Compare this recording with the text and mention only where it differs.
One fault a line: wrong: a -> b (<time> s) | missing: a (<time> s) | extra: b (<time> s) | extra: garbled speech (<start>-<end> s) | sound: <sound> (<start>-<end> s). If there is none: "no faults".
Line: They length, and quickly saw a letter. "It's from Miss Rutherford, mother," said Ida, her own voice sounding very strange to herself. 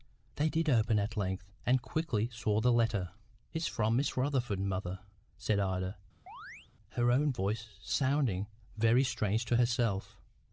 extra: did open at (0.5 s)
wrong: a -> the (2.6 s)
sound: chirp (6.3-6.7 s)